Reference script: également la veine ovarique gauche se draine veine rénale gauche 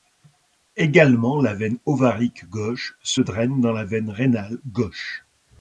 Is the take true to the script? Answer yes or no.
no